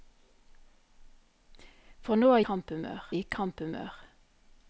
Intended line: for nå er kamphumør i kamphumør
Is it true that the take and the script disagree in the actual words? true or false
false